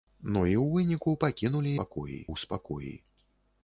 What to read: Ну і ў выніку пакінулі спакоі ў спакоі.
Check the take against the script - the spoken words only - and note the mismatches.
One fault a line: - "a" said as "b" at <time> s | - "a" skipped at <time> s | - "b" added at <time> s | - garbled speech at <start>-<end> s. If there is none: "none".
none